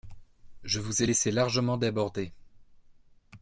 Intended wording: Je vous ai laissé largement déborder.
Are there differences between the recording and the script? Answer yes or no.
no